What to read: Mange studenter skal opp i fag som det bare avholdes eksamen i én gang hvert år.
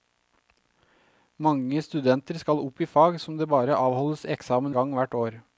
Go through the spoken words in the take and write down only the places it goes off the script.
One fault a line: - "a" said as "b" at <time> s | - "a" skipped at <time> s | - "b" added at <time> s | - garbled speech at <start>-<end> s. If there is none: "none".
- "i én" skipped at 4.8 s